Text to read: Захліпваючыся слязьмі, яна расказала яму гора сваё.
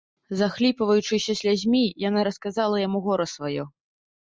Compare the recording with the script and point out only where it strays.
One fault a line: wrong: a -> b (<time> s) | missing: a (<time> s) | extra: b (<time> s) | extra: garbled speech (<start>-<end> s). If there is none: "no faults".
no faults